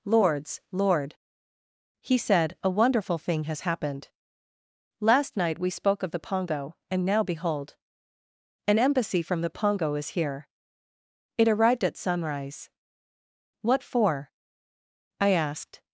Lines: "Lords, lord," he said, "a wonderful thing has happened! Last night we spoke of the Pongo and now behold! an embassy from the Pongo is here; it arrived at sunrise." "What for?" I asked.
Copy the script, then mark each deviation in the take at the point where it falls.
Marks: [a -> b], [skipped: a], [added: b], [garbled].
"Lords, lord," he said, "a wonderful thing has happened! Last night we spoke of the Pongo and now behold! an embassy from the Pongo is here; it arrived at sunrise." "What for?" I asked.